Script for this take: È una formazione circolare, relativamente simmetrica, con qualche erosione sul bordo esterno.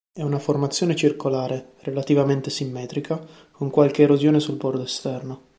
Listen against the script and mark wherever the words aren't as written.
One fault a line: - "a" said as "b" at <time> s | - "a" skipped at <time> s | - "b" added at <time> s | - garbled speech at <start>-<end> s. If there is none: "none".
none